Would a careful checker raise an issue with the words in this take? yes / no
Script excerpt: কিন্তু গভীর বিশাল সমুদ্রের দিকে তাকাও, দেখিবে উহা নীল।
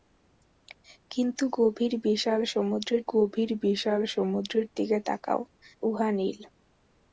yes